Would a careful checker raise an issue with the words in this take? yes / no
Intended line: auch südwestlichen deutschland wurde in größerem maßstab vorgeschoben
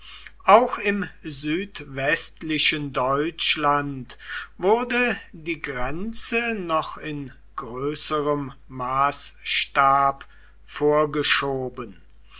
yes